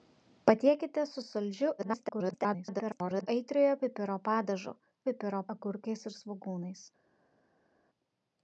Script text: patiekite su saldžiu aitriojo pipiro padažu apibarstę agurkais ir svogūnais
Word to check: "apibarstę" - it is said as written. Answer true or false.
false